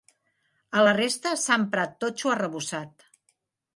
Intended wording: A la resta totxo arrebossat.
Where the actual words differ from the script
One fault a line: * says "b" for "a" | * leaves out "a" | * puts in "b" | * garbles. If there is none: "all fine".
* puts in "s'ha emprat"